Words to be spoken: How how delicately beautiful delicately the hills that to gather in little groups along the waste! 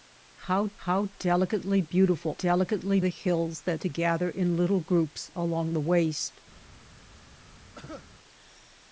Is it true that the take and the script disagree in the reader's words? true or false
false